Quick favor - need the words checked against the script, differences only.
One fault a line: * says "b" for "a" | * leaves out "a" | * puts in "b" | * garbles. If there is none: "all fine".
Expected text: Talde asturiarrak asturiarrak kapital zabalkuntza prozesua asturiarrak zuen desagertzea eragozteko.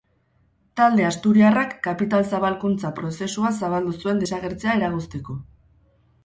* leaves out "asturiarrak"
* says "zabaldu" for "asturiarrak"